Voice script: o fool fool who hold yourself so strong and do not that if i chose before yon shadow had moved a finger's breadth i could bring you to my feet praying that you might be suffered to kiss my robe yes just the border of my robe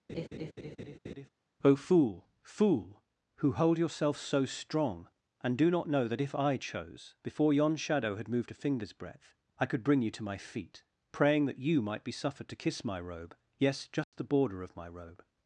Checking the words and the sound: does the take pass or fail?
fail